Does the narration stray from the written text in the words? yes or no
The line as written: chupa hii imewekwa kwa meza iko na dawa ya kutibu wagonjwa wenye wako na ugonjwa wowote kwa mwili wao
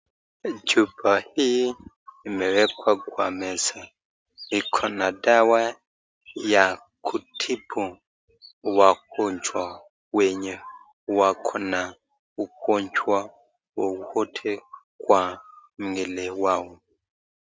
no